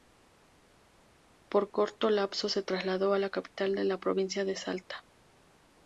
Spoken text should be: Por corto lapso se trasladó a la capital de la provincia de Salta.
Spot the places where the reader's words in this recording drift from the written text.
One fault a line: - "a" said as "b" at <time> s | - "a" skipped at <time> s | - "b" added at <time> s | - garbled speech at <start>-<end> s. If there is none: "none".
none